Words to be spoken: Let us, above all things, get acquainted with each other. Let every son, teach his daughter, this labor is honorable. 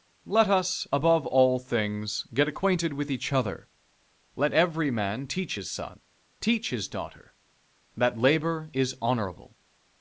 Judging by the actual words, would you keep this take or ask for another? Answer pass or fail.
fail